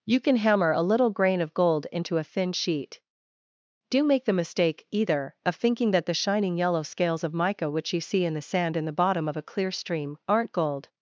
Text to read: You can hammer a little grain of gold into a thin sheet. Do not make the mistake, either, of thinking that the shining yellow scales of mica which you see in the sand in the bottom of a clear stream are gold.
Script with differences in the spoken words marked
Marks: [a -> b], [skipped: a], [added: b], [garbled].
You can hammer a little grain of gold into a thin sheet. Do [skipped: not] make the mistake, either, of thinking that the shining yellow scales of mica which you see in the sand in the bottom of a clear stream [are -> aren't] gold.